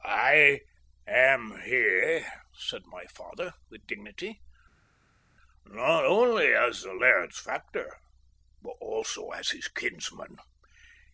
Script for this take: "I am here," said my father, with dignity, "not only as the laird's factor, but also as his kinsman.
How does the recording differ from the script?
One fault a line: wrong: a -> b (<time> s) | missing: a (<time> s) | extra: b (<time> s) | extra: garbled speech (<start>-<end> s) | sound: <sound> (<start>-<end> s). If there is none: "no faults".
no faults